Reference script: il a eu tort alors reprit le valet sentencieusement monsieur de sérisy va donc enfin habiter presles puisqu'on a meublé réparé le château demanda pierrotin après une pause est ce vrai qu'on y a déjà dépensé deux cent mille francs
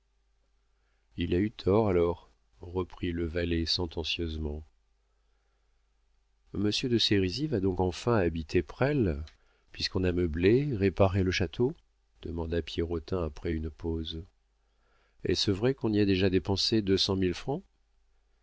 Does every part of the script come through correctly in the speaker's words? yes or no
yes